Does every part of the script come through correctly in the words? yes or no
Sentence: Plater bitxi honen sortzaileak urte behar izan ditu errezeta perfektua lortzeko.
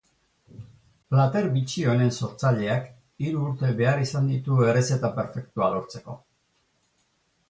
no